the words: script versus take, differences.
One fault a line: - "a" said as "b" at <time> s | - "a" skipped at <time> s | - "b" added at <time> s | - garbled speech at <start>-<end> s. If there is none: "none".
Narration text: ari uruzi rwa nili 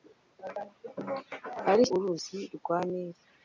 none